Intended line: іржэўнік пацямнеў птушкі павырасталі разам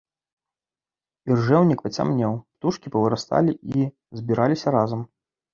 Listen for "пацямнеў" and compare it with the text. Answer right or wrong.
right